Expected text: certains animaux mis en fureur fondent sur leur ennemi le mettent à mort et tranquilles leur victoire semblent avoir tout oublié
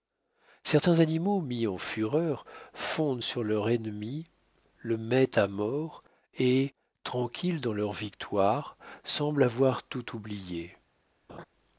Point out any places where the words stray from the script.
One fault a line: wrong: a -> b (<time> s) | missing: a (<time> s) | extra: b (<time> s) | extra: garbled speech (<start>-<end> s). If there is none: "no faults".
extra: dans (7.6 s)